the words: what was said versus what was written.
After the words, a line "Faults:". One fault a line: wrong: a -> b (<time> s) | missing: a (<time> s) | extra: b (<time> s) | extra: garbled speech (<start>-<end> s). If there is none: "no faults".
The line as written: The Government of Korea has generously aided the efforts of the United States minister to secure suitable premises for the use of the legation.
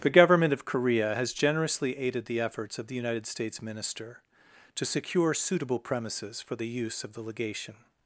The Government of Korea has generously aided the efforts of the United States minister to secure suitable premises for the use of the legation.
Faults:
no faults